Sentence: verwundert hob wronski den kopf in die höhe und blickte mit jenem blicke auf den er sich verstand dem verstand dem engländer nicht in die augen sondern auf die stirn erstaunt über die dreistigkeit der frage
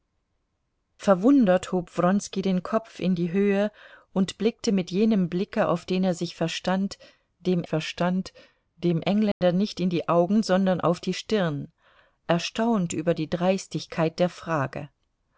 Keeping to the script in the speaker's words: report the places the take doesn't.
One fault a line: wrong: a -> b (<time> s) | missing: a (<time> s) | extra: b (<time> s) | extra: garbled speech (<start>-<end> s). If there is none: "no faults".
no faults